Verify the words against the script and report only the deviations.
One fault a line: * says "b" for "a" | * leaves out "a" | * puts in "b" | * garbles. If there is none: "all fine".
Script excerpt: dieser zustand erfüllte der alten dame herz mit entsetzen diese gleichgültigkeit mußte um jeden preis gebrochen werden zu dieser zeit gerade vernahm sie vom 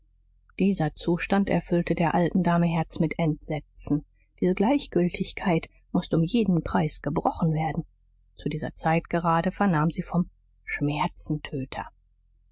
all fine